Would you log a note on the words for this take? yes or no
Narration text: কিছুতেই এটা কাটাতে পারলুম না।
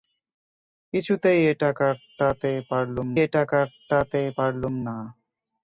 yes